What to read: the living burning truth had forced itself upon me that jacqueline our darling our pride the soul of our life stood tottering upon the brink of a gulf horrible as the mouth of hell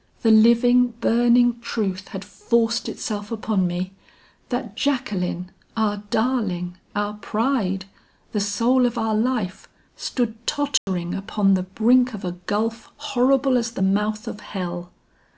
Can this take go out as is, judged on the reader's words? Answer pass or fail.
pass